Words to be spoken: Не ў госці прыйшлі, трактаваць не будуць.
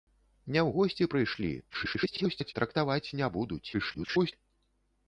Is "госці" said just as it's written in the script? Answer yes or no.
yes